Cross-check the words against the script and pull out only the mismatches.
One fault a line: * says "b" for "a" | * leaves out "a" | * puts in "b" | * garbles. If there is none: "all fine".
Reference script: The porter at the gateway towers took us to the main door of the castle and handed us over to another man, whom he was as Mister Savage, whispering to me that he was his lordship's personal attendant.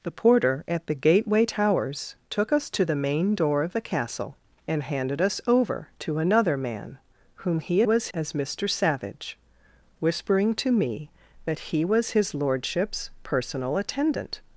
all fine